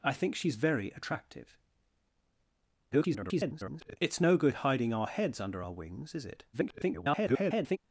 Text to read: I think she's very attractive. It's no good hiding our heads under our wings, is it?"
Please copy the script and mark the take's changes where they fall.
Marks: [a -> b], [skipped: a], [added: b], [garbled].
I think she's very attractive. [garbled] It's no good hiding our heads under our wings, is it?" [garbled]